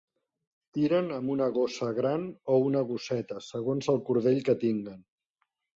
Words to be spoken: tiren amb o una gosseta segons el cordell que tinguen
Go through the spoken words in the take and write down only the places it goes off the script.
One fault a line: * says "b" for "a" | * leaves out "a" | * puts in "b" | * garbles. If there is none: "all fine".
* puts in "una gossa gran"